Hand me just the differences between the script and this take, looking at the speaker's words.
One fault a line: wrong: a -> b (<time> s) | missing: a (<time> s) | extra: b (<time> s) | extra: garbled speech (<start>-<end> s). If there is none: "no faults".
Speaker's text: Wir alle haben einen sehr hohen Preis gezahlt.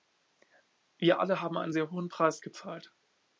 no faults